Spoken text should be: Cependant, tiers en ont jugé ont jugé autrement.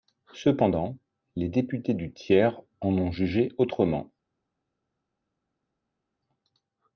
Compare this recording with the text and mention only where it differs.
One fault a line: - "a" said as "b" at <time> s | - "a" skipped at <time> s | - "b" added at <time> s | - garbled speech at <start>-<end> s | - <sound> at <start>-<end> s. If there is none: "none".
- "les députés du" added at 1.4 s
- "ont jugé" skipped at 3.5 s